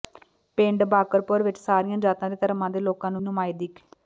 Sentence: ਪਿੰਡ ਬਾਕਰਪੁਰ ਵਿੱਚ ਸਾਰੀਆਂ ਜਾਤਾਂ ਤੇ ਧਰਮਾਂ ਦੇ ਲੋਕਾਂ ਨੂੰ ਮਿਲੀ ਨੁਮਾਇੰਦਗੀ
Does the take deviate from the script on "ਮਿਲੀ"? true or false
true